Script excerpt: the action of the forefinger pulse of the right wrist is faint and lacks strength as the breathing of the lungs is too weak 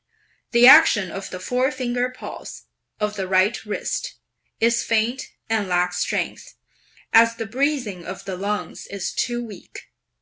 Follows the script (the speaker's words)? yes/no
yes